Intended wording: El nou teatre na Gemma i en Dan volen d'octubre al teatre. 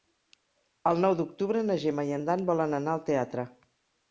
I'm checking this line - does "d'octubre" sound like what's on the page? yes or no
no